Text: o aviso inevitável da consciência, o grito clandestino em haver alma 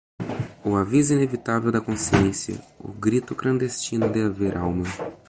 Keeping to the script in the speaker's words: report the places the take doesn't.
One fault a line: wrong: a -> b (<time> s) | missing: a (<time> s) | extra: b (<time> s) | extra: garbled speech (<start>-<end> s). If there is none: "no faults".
wrong: em -> de (4.1 s)